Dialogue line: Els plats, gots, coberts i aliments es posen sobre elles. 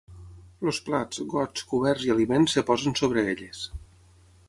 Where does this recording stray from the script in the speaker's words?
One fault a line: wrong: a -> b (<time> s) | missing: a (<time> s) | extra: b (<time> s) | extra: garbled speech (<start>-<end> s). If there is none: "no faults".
no faults